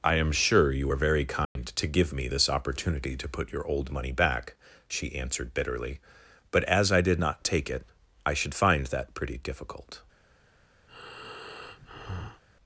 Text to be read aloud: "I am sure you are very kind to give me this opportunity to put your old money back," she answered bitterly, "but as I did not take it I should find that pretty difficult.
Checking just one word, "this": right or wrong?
right